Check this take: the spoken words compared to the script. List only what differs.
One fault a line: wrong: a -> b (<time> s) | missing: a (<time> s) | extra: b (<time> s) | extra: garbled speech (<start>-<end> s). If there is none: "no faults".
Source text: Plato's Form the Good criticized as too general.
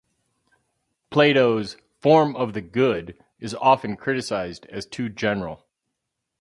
extra: of (2.4 s)
extra: is often (3.4 s)